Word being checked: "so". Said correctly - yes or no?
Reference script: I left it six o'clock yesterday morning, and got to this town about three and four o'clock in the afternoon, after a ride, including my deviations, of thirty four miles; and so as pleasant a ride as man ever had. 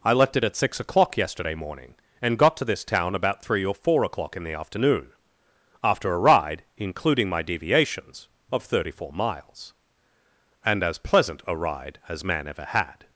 no